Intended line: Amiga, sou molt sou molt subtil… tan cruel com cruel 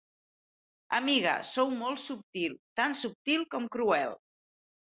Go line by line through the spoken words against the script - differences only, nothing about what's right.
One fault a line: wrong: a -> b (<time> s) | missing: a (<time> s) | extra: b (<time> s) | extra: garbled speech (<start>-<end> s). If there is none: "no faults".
missing: sou molt (2.0 s)
wrong: cruel -> subtil (3.0 s)